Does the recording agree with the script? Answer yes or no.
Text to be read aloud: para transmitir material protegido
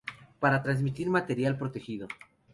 yes